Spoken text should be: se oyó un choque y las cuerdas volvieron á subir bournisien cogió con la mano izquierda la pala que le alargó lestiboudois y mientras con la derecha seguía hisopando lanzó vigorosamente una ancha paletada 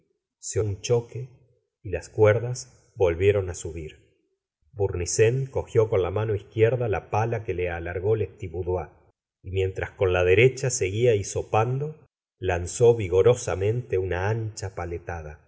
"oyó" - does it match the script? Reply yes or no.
no